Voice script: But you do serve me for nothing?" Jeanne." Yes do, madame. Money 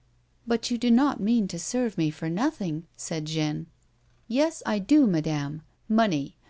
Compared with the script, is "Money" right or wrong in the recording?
right